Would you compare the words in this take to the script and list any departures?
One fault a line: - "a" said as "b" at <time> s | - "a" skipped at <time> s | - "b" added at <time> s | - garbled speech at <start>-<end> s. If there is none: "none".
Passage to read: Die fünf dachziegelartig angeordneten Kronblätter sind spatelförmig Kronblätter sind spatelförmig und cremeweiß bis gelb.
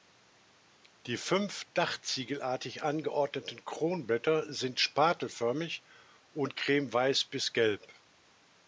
- "Kronblätter sind spatelförmig" skipped at 5.8 s